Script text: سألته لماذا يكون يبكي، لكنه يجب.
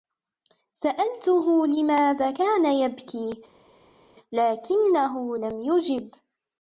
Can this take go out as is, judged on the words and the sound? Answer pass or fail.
fail